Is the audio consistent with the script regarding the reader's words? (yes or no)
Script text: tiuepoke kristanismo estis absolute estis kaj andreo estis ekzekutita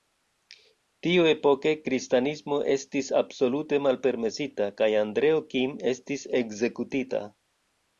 no